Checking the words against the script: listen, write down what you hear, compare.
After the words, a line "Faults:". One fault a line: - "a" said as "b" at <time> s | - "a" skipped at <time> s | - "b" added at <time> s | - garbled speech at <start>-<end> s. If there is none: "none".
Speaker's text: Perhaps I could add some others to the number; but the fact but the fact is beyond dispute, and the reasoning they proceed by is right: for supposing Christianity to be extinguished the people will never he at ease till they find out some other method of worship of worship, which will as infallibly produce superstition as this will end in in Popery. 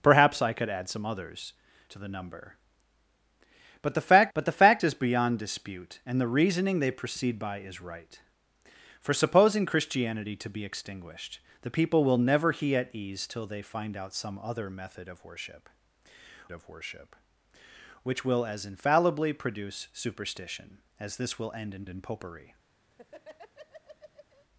Perhaps I could add some others to the number; but the fact but the fact is beyond dispute, and the reasoning they proceed by is right: for supposing Christianity to be extinguished the people will never he at ease till they find out some other method of worship of worship, which will as infallibly produce superstition as this will end in in Popery.
Faults:
none